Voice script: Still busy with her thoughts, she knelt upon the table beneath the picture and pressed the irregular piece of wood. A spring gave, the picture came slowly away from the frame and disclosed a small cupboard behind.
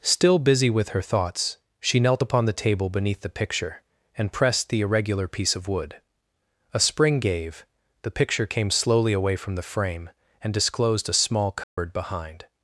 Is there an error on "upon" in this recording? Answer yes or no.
no